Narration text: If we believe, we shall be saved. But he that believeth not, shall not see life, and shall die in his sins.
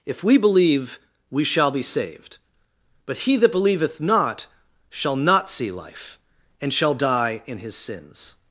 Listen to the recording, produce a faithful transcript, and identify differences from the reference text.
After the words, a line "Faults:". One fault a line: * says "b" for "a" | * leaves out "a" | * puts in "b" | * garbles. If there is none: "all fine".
If we believe, we shall be saved. But he that believeth not, shall not see life, and shall die in his sins.
Faults:
all fine